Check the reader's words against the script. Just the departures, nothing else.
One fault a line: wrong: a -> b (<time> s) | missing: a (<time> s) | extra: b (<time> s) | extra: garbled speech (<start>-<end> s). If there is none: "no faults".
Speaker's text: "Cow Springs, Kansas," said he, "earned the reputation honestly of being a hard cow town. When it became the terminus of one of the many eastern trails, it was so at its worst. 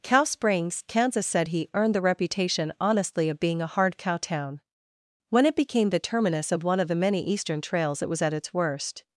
missing: so (8.2 s)